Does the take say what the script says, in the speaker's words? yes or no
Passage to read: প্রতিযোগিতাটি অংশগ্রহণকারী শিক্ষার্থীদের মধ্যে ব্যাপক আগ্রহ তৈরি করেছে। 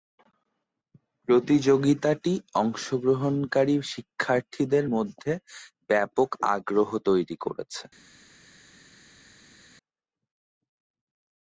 yes